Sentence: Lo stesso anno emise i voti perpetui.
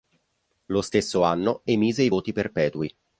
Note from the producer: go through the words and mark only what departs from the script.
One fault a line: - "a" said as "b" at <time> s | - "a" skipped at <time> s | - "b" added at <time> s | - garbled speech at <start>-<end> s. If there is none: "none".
none